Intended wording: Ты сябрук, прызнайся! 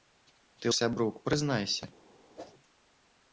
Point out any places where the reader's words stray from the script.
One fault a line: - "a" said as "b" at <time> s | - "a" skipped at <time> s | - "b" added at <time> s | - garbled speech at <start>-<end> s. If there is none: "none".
none